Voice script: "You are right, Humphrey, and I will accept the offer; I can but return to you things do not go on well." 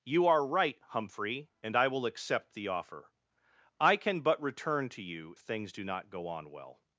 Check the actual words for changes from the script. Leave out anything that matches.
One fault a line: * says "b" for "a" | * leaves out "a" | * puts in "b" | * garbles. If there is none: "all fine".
all fine